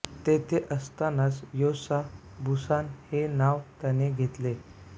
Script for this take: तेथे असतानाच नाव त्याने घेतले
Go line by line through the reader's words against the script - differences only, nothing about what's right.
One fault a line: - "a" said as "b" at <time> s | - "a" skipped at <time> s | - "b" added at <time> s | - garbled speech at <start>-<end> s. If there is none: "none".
- "योसा बुसान हे" added at 1.5 s